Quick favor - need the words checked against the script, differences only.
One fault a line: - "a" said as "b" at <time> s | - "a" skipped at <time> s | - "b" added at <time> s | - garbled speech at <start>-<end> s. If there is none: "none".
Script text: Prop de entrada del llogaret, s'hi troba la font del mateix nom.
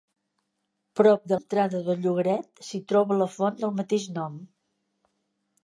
none